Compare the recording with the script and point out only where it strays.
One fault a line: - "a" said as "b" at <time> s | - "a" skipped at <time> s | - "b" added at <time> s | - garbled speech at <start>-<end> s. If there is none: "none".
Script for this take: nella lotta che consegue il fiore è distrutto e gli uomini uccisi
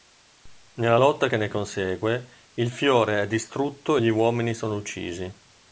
- "ne" added at 1.4 s
- "sono" added at 4.6 s